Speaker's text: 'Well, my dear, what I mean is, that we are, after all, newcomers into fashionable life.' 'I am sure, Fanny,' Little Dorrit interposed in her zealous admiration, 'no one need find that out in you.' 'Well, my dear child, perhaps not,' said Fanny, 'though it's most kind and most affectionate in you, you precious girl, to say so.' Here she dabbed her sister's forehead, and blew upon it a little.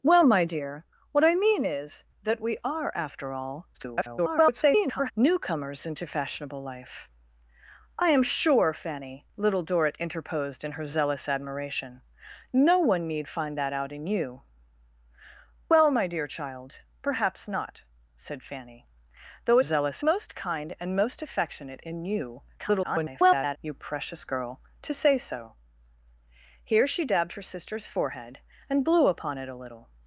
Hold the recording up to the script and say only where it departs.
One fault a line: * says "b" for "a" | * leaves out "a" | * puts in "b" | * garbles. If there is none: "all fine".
* garbles
* says "zealous" for "it's"
* garbles